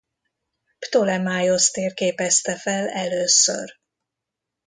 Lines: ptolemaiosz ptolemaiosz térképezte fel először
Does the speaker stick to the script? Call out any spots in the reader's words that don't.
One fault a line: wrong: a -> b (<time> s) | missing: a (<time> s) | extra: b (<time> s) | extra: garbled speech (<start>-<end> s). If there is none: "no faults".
missing: ptolemaiosz (1.7 s)